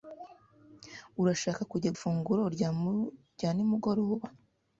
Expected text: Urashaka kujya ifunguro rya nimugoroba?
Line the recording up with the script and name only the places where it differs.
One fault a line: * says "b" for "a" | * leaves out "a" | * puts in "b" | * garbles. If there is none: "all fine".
all fine